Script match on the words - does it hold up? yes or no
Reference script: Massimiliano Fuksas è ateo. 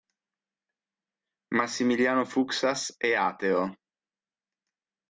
yes